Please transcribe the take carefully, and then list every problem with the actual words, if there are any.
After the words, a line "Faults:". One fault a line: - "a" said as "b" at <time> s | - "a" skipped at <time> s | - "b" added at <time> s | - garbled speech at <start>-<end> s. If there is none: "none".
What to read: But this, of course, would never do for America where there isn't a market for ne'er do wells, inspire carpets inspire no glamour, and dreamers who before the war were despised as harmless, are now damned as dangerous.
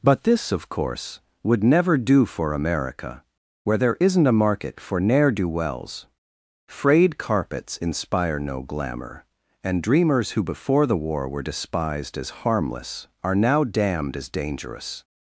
But this, of course, would never do for America where there isn't a market for ne'er do wells, frayed carpets inspire no glamour, and dreamers who before the war were despised as harmless, are now damned as dangerous.
Faults:
- "inspire" said as "frayed" at 6.7 s